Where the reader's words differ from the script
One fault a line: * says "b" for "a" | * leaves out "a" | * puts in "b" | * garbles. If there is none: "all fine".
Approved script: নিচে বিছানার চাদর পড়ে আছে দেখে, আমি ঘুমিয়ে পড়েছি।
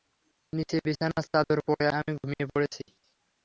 * leaves out "আছে দেখে"